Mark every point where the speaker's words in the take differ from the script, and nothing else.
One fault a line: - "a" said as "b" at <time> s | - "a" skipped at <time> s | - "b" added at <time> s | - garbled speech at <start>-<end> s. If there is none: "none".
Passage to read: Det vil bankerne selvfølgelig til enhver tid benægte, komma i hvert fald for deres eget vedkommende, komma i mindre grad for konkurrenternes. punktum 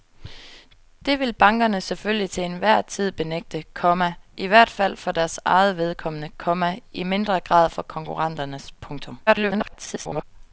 - garbled speech at 9.3-10.2 s